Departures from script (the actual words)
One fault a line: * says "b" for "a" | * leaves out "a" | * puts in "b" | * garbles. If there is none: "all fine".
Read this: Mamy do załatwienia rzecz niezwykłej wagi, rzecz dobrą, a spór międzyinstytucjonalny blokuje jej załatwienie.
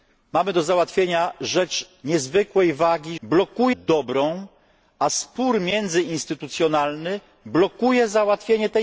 * says "blokuje" for "rzecz"